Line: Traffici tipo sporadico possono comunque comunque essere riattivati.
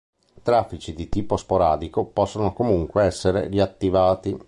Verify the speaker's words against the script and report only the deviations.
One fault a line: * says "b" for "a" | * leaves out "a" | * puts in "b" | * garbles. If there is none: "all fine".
* puts in "di"
* leaves out "comunque"